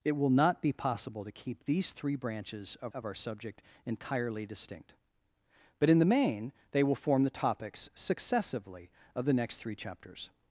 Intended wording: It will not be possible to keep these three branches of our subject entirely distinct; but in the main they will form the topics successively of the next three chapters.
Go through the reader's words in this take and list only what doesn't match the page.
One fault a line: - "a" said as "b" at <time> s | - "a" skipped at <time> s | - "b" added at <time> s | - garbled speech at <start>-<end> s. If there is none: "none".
- "of" added at 2.9 s